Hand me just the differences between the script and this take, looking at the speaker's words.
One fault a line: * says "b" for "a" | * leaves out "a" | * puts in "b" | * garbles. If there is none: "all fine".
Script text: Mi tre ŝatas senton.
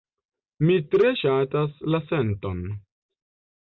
* puts in "la"